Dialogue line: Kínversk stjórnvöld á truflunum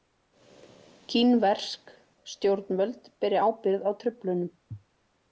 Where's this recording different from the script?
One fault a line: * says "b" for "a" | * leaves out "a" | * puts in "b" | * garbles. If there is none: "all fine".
* puts in "beri ábyrgð"